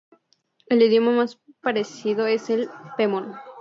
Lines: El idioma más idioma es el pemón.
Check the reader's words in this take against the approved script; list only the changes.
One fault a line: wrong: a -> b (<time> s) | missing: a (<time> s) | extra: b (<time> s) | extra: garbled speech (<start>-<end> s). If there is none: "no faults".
wrong: idioma -> parecido (1.6 s)